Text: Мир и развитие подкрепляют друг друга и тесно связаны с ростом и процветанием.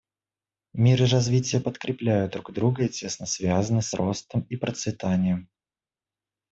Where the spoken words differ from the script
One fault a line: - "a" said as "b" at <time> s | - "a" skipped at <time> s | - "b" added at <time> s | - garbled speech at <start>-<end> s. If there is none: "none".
none